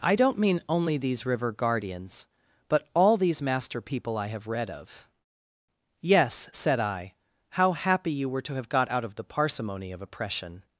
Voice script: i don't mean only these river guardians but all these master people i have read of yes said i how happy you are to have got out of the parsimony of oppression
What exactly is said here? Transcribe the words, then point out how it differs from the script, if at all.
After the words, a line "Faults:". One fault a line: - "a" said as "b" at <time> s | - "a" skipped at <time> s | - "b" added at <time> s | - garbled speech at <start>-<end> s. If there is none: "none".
i don't mean only these river guardians but all these master people i have read of yes said i how happy you were to have got out of the parsimony of oppression
Faults:
- "are" said as "were" at 8.3 s